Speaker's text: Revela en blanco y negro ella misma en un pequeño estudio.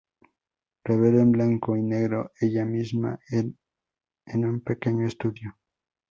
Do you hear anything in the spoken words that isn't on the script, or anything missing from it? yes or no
no